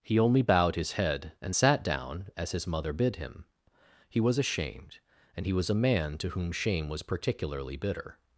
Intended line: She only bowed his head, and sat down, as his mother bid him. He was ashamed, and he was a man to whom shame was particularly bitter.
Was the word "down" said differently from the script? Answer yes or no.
no